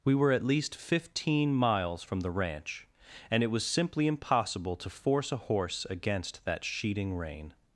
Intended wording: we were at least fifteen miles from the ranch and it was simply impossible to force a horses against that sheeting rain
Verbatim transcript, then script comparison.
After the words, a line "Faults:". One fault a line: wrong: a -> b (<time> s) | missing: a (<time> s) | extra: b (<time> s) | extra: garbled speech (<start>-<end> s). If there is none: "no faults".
we were at least fifteen miles from the ranch and it was simply impossible to force a horse against that sheeting rain
Faults:
wrong: horses -> horse (5.4 s)